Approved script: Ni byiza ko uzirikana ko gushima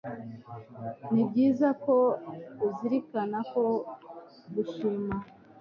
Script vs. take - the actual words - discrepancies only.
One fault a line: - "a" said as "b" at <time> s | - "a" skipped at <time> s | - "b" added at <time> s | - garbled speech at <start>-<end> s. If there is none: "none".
none